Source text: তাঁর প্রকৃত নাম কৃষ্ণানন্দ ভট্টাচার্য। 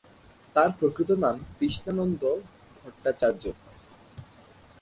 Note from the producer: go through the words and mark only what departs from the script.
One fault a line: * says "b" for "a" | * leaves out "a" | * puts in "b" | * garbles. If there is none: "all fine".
all fine